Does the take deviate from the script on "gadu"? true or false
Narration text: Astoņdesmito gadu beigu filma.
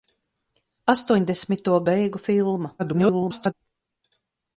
true